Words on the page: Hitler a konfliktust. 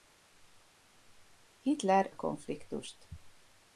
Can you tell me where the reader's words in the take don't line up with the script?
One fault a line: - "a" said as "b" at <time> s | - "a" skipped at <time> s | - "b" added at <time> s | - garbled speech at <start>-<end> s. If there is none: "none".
none